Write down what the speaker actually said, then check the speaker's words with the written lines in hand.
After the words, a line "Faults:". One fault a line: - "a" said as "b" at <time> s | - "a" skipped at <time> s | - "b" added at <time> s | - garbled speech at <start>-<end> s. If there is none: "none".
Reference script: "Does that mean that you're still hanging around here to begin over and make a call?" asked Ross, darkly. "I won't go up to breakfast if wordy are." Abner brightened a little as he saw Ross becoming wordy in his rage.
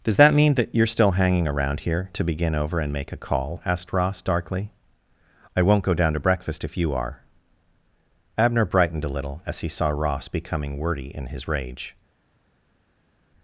"Does that mean that you're still hanging around here to begin over and make a call?" asked Ross, darkly. "I won't go down to breakfast if you are." Abner brightened a little as he saw Ross becoming wordy in his rage.
Faults:
- "up" said as "down" at 5.9 s
- "wordy" said as "you" at 6.8 s